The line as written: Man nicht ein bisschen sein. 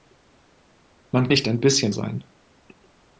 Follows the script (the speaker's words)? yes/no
yes